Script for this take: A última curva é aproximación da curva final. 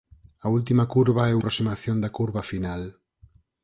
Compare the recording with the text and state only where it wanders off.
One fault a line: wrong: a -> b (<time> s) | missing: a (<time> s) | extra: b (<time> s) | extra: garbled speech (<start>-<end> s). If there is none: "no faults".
no faults